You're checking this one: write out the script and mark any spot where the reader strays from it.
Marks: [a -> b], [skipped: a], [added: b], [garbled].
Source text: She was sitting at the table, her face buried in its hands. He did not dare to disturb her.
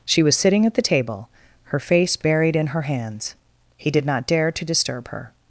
She was sitting at the table, her face buried in [its -> her] hands. He did not dare to disturb her.